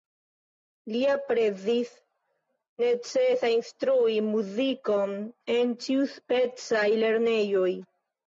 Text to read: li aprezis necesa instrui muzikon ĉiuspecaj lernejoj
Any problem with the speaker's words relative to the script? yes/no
yes